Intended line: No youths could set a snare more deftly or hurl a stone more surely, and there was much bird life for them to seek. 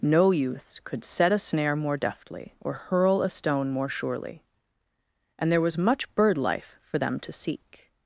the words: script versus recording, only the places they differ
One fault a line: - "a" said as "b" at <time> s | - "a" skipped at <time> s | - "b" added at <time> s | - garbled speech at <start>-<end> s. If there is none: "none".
none